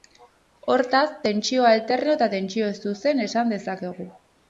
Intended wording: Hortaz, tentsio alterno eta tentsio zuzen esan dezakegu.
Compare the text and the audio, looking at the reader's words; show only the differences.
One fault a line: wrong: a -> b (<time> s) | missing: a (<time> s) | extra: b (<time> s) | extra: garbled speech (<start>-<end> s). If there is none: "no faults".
no faults